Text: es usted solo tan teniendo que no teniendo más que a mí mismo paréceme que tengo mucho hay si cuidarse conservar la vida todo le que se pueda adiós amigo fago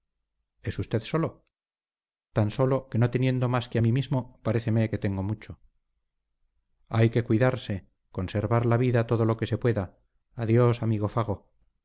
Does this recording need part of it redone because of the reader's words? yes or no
yes